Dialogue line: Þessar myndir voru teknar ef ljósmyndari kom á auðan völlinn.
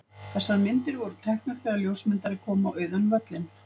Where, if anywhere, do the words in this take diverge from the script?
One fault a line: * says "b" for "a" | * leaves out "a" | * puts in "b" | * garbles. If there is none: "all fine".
* says "þegar" for "ef"